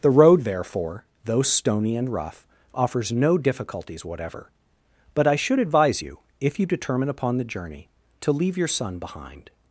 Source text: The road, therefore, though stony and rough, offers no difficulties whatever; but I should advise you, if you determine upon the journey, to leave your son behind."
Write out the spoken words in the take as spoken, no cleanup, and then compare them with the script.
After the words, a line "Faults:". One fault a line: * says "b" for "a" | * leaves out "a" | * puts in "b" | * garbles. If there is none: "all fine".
The road, therefore, though stony and rough, offers no difficulties whatever; but I should advise you, if you determine upon the journey, to leave your son behind."
Faults:
all fine